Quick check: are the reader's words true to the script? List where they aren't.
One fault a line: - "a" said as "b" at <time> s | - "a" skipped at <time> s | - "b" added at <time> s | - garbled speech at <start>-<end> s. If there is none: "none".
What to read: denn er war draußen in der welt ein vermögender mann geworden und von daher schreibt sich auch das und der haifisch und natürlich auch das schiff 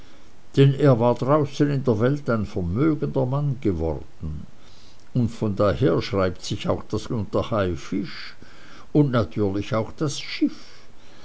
none